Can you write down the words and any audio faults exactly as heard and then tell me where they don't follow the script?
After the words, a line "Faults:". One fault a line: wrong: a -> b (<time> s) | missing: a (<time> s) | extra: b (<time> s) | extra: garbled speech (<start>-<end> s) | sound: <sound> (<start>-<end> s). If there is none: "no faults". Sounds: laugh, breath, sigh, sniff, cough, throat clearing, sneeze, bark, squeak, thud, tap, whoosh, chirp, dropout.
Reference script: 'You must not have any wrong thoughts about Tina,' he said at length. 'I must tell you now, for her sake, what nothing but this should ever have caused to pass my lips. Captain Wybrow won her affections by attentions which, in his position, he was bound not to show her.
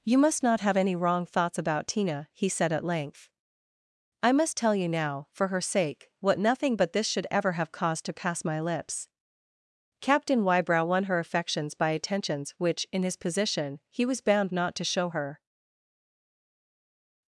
'You must not have any wrong thoughts about Tina,' he said at length. 'I must tell you now, for her sake, what nothing but this should ever have caused to pass my lips. Captain Wybrow won her affections by attentions which, in his position, he was bound not to show her.
Faults:
no faults